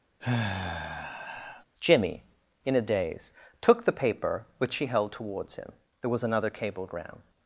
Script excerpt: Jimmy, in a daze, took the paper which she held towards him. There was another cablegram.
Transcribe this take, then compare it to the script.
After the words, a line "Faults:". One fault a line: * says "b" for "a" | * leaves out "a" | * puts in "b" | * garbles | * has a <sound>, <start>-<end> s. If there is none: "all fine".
Jimmy, in a daze, took the paper which she held towards him. There was another cablegram.
Faults:
* has a sigh, 0.2-1.6 s